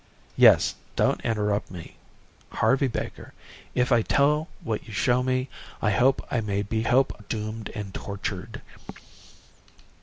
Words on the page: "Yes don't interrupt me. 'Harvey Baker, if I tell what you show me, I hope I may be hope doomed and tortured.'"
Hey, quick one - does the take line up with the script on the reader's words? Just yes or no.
yes